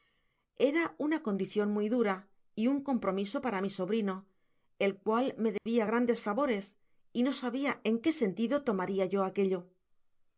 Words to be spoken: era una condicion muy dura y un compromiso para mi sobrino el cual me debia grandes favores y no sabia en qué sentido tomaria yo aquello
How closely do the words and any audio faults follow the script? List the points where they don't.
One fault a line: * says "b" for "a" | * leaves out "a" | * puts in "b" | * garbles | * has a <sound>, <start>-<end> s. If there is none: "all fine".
* has a dropout, 5.6-5.7 s